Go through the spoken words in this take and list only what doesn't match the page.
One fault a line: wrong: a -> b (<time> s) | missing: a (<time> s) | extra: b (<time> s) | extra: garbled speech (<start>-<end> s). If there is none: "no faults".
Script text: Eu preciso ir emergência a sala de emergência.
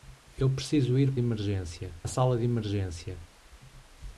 no faults